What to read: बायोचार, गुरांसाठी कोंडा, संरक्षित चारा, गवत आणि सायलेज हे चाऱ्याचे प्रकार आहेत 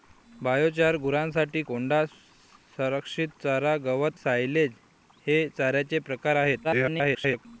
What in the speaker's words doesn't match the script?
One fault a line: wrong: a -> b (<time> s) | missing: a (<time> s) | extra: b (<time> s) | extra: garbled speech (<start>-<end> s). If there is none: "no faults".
missing: आणि (4.2 s)
extra: garbled speech (6.6-7.5 s)